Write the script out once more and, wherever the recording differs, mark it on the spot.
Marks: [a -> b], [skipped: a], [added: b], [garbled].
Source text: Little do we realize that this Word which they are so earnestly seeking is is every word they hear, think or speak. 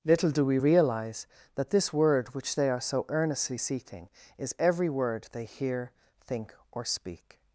Little do we realize that this Word which they are so earnestly seeking is [skipped: is] every word they hear, think or speak.